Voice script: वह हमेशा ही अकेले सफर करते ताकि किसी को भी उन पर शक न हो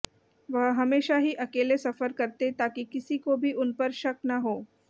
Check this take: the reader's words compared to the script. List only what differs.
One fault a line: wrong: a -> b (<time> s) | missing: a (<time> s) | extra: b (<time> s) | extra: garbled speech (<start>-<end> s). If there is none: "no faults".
no faults